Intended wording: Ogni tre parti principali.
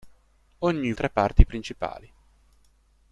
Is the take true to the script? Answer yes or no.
yes